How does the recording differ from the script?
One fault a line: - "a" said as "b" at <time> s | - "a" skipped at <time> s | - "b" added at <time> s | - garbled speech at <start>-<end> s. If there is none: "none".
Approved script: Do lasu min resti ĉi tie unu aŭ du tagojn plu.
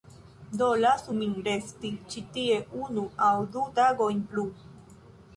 none